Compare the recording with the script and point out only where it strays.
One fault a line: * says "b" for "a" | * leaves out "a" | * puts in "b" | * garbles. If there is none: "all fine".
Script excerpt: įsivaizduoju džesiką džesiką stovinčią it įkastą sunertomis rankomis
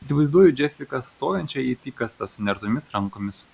* leaves out "džesiką"